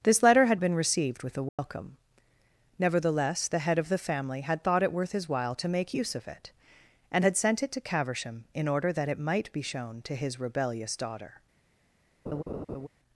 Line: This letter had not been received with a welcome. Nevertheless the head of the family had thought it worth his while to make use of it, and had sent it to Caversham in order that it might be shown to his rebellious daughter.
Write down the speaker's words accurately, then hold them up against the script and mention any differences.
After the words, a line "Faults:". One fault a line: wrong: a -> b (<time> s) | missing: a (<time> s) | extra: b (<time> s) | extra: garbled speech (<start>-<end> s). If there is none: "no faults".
This letter had been received with a welcome. Nevertheless the head of the family had thought it worth his while to make use of it, and had sent it to Caversham in order that it might be shown to his rebellious daughter.
Faults:
missing: not (0.6 s)